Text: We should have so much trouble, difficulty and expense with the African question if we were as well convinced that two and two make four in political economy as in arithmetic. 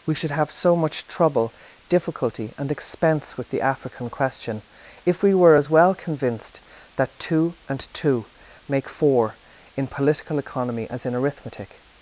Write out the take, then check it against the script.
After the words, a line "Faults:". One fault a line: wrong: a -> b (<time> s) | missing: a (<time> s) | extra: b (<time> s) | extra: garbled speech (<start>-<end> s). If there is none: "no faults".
We should have so much trouble, difficulty and expense with the African question if we were as well convinced that two and two make four in political economy as in arithmetic.
Faults:
no faults